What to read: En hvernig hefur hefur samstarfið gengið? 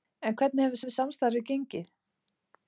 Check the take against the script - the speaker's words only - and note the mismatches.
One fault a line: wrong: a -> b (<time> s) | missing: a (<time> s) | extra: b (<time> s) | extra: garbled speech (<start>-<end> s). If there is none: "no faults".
no faults